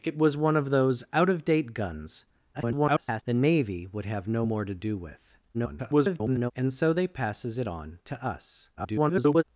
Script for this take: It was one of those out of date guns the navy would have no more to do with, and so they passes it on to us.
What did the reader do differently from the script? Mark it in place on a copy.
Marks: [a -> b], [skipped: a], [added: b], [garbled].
It was one of those out of date guns [garbled] the navy would have no more to do with, [garbled] and so they passes it on to us. [garbled]